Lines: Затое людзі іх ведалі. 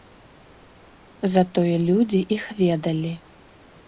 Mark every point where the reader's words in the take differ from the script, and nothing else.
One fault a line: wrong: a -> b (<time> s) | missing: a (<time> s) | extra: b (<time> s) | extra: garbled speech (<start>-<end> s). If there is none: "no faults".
no faults